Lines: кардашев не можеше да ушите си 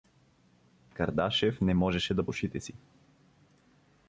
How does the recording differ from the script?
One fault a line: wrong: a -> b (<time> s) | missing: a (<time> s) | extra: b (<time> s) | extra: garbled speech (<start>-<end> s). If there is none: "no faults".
no faults